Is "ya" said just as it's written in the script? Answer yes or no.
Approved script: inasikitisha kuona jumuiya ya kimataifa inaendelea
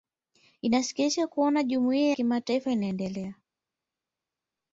no